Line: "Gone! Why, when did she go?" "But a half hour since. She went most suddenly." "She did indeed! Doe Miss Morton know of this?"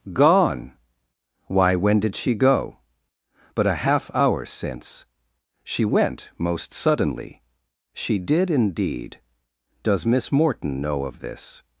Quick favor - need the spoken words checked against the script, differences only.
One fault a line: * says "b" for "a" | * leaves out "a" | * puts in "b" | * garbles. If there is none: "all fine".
* says "Does" for "Doe"